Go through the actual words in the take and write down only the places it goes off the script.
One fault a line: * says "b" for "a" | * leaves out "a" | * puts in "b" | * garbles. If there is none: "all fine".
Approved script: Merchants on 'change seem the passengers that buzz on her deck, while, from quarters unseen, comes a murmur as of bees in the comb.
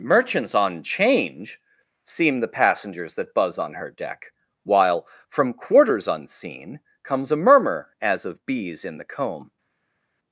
all fine